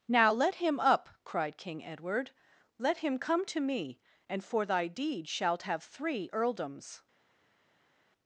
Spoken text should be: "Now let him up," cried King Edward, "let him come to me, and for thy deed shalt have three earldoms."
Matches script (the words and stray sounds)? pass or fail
pass